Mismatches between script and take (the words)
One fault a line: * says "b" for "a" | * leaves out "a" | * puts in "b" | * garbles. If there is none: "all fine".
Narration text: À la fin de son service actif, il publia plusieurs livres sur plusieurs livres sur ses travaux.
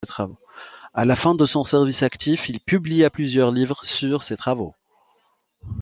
* leaves out "plusieurs livres sur"